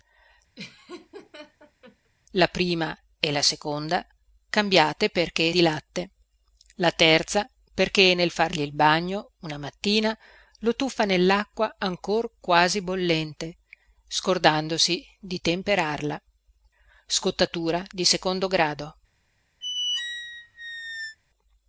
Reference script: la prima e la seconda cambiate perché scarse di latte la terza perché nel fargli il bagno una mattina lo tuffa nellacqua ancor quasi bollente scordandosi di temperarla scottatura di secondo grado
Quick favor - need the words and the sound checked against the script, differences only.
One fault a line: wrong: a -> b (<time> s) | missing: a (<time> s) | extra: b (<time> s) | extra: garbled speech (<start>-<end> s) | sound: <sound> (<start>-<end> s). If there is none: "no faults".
sound: laugh (0.6-2.1 s)
missing: scarse (5.5 s)
sound: squeak (19.6-21.2 s)